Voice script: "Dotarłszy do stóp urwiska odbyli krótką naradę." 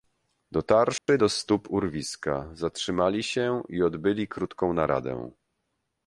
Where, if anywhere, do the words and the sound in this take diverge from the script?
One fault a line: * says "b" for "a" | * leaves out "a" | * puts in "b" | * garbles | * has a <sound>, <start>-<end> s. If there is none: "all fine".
* has a dropout, 1.0-1.1 s
* puts in "zatrzymali się i"